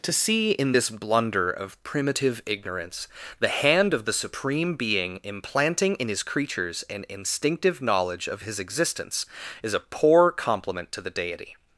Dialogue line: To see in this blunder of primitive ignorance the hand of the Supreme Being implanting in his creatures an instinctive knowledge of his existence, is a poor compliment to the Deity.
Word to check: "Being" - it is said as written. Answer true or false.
true